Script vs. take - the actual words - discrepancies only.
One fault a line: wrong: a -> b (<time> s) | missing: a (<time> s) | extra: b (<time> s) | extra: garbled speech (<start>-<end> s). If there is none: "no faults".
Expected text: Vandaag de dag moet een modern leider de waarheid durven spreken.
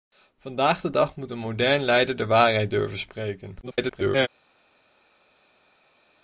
extra: garbled speech (3.6-4.3 s)